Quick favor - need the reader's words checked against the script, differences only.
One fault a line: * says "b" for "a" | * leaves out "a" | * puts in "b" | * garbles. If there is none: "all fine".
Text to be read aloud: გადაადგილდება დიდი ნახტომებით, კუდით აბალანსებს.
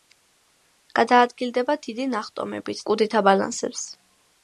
all fine